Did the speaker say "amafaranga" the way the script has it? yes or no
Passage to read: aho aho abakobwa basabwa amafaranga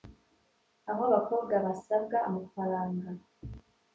yes